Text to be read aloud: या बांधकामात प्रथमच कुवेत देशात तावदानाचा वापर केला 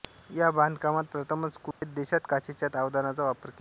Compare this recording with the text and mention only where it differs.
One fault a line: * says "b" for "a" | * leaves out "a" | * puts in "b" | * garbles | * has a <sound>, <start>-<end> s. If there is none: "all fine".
* has a dropout, 1.7-1.8 s
* puts in "काचेच्या"